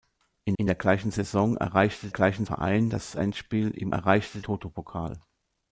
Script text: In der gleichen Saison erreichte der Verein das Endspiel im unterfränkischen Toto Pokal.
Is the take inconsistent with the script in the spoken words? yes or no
yes